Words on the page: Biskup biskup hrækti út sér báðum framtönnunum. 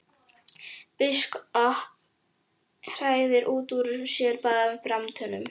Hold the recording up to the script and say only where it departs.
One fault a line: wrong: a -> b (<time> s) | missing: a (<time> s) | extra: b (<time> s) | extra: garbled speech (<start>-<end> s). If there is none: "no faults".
missing: biskup (1.6 s)
extra: úr (3.8 s)